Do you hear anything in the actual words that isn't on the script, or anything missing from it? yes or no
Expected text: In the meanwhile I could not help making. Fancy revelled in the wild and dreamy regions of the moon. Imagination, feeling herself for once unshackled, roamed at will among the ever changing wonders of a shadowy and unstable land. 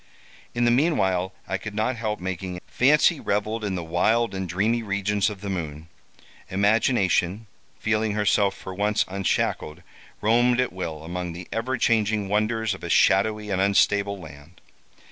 no